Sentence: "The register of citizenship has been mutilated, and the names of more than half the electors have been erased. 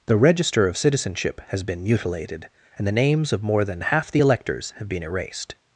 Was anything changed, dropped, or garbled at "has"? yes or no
no